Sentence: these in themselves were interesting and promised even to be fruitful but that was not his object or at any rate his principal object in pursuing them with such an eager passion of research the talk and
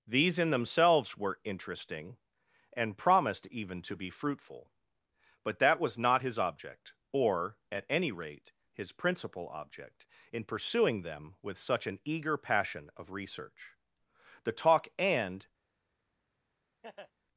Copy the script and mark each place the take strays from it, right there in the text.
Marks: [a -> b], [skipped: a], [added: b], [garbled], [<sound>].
these in themselves were interesting and promised even to be fruitful but that was not his object or at any rate his principal object in pursuing them with such an eager passion of research the talk and [laugh]